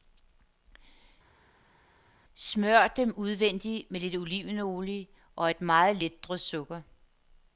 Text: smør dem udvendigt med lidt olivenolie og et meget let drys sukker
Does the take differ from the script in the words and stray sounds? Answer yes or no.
no